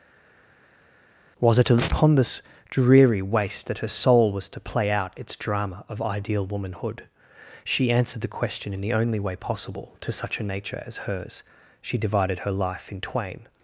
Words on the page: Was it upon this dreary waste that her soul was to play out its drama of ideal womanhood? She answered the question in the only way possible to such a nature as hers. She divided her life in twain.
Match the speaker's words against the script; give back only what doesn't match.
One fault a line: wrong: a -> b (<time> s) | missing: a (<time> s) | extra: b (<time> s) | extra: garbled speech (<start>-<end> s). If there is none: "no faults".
no faults